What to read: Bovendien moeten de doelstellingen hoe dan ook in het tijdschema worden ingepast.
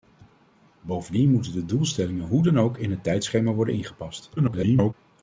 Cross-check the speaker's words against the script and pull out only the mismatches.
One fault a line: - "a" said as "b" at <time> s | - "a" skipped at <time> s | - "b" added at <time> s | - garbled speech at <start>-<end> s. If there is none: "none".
- garbled speech at 4.4-4.9 s